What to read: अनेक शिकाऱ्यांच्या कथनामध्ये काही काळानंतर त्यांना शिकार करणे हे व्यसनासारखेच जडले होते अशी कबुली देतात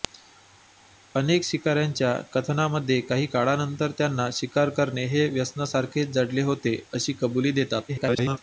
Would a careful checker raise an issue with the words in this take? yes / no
yes